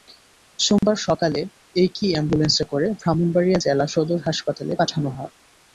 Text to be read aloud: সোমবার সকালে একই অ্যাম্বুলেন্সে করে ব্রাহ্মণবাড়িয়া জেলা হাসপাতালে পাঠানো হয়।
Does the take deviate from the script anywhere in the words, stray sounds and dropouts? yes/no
yes